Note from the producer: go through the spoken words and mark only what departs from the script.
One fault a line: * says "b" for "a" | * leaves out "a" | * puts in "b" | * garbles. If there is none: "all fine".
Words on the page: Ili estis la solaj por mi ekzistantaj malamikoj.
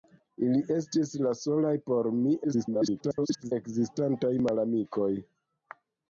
* garbles